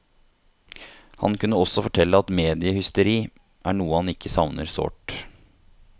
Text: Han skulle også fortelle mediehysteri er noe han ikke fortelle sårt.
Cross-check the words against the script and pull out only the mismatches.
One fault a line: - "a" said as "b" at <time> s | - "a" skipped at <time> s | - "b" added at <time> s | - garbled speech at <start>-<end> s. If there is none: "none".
- "skulle" said as "kunne" at 1.4 s
- "at" added at 2.2 s
- "fortelle" said as "savner" at 4.4 s